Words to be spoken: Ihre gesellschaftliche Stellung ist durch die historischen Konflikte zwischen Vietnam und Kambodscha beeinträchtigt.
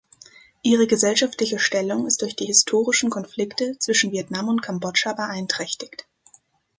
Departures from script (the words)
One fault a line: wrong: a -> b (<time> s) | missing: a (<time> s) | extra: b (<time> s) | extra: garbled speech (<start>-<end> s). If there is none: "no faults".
no faults